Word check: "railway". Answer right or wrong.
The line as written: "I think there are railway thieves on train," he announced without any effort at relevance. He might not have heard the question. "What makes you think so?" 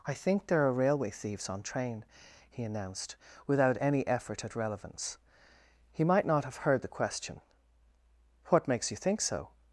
right